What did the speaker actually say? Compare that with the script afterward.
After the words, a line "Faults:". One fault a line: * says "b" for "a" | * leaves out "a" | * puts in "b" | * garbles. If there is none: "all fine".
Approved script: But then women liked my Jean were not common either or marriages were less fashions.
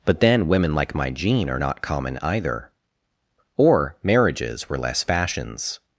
But then women like my Jean are not common either or marriages were less fashions.
Faults:
* says "like" for "liked"
* says "are" for "were"